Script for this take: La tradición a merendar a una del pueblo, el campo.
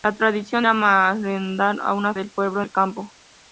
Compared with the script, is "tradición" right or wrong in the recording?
right